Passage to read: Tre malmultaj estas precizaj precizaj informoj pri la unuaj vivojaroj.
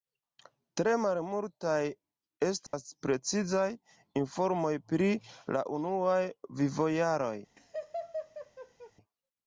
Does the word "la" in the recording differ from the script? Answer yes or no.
no